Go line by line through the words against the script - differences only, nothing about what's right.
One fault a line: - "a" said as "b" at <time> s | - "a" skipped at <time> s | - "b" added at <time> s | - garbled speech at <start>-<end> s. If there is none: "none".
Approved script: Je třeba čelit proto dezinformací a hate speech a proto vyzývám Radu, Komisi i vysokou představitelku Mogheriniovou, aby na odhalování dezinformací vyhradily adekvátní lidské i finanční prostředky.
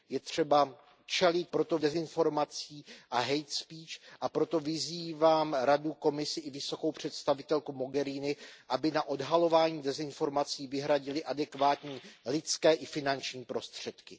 none